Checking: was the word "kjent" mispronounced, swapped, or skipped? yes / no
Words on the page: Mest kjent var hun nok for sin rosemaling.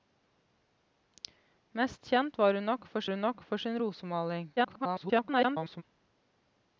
no